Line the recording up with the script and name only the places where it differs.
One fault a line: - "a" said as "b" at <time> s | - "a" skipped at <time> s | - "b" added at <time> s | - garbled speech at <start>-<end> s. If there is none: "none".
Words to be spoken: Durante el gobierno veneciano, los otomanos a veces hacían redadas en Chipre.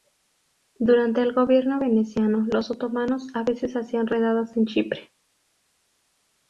none